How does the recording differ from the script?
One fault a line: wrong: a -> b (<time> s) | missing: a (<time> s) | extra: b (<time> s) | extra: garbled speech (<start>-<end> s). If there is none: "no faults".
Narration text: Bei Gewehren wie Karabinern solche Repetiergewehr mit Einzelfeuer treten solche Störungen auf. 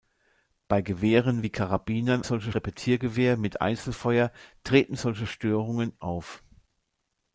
no faults